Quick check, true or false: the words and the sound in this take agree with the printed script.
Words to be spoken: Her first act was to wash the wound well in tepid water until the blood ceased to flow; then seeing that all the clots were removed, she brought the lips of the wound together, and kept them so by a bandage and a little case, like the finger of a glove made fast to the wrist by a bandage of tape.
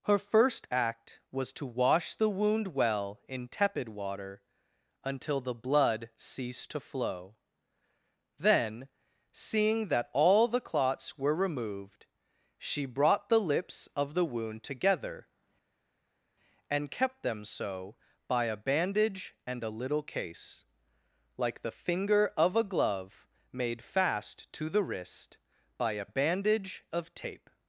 true